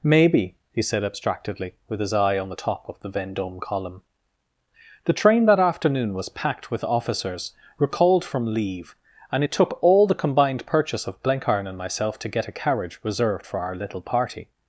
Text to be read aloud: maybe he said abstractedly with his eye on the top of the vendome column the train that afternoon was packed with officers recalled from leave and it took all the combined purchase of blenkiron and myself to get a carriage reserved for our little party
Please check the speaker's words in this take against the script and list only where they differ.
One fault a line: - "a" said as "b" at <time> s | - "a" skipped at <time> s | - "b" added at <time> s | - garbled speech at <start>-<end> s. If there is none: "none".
none